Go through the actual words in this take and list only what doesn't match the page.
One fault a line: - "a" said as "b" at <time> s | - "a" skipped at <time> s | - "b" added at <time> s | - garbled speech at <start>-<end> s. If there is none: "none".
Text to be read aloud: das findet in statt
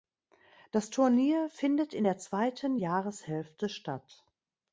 - "turnier" added at 0.9 s
- "der zweiten jahreshälfte" added at 2.0 s